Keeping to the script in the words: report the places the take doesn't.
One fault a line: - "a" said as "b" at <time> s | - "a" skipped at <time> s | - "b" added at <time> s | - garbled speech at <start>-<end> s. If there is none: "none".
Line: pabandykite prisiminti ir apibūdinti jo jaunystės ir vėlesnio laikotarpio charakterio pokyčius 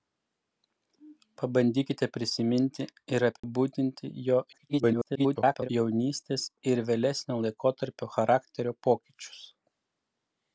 - garbled speech at 4.5-5.7 s